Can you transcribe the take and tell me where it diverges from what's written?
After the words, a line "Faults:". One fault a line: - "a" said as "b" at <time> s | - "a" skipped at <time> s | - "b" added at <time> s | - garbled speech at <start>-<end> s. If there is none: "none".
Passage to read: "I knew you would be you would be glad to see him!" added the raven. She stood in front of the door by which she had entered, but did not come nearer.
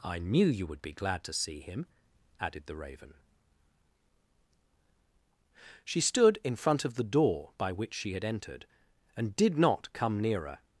"I knew you would be glad to see him!" added the raven. She stood in front of the door by which she had entered, and did not come nearer.
Faults:
- "you would be" skipped at 0.9 s
- "but" said as "and" at 9.2 s